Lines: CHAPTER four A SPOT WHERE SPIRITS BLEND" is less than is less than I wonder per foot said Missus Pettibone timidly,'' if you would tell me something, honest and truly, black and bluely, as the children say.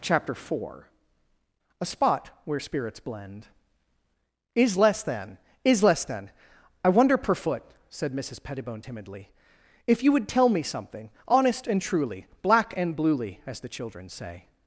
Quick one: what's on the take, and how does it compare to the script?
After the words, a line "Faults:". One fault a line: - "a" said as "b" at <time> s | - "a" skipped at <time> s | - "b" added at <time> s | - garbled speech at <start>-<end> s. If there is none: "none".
CHAPTER four A SPOT WHERE SPIRITS BLEND" is less than is less than I wonder per foot said Missus Pettibone timidly,'' if you would tell me something, honest and truly, black and bluely, as the children say.
Faults:
none